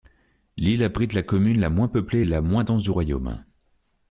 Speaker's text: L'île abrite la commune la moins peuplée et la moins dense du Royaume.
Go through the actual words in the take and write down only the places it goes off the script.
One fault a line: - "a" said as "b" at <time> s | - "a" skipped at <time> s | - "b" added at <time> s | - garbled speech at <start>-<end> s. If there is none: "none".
none